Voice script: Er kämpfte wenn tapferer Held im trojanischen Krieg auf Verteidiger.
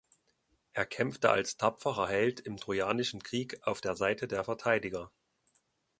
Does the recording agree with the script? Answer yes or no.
no